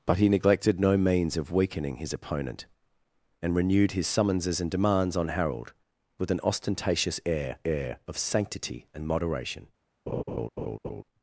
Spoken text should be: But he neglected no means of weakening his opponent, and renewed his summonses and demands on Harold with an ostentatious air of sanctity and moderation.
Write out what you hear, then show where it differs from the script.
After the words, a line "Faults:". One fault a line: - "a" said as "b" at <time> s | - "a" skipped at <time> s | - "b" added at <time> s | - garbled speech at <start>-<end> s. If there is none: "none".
But he neglected no means of weakening his opponent, and renewed his summonses and demands on Harold with an ostentatious air air of sanctity and moderation.
Faults:
- "air" added at 7.6 s